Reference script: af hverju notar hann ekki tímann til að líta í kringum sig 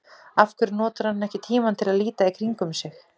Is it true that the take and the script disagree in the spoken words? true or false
false